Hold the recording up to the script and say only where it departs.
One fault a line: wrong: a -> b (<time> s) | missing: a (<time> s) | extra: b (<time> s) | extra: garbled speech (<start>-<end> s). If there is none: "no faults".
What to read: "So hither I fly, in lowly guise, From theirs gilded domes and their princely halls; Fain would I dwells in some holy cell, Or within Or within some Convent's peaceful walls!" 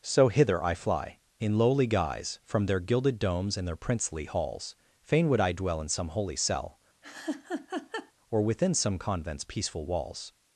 wrong: theirs -> their (2.6 s)
wrong: dwells -> dwell (5.5 s)
missing: Or within (8.7 s)